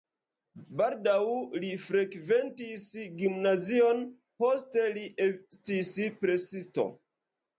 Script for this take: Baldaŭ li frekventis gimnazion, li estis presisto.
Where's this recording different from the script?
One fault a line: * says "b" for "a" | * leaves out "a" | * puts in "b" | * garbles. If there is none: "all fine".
* puts in "poste"